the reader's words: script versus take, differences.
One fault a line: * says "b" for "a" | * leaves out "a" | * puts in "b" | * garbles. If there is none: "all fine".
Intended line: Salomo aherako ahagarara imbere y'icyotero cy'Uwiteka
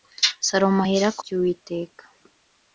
* leaves out "ahagarara imbere y'icyotero"